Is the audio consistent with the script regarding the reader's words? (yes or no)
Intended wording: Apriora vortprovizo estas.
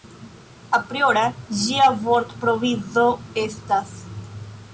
no